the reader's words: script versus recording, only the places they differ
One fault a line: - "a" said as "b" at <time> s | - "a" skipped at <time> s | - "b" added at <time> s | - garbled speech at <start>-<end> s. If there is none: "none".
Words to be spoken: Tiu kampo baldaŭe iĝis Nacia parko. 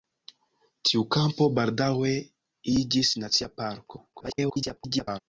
- garbled speech at 4.1-5.2 s